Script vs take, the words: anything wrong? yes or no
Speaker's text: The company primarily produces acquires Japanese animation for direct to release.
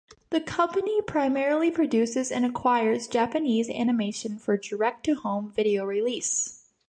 yes